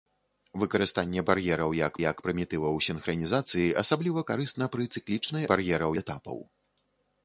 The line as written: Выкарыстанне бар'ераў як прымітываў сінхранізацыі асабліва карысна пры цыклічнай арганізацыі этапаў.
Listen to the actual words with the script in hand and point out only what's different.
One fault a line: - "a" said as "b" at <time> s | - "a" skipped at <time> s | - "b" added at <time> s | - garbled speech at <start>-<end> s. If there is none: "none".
- "як" added at 2.0 s
- "арганізацыі" said as "бар'ераў" at 5.5 s